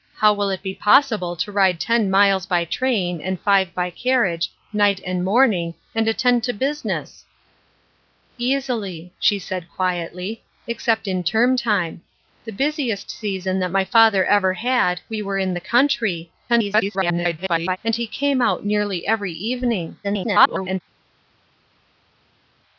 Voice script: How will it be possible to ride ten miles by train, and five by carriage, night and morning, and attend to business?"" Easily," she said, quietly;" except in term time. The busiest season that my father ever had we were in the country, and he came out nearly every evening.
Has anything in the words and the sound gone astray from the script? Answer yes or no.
yes